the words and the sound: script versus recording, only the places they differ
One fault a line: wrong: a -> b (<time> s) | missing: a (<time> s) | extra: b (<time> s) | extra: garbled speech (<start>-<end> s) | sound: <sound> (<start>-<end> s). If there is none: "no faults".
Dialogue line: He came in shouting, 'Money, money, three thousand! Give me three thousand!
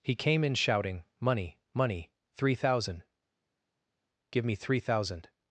no faults